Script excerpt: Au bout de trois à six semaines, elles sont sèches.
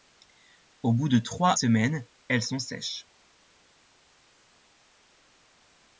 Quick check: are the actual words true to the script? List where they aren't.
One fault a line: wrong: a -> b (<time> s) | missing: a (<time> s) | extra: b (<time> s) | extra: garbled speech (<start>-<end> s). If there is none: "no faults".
missing: à six (1.5 s)